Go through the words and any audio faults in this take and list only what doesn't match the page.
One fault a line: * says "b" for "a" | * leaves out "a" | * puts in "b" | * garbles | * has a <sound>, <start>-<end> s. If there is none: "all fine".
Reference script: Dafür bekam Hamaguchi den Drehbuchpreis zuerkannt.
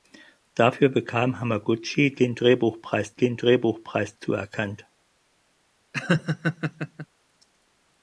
* puts in "den Drehbuchpreis"
* has a laugh, 5.9-7.1 s